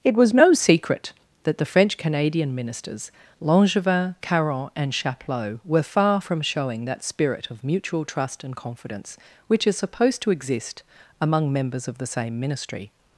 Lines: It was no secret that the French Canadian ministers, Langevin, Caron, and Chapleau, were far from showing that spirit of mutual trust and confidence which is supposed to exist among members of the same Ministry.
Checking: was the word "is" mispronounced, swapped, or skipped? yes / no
no